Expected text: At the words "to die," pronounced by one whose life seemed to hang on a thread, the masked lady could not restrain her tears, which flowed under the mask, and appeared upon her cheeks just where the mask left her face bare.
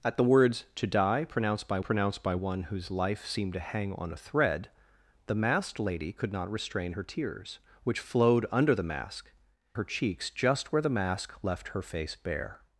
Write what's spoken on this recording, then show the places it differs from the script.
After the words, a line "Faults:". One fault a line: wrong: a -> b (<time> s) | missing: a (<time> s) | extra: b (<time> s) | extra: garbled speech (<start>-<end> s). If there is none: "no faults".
At the words "to die," pronounced by pronounced by one whose life seemed to hang on a thread, the masked lady could not restrain her tears, which flowed under the mask, her cheeks just where the mask left her face bare.
Faults:
extra: pronounced by (1.8 s)
missing: and appeared upon (9.3 s)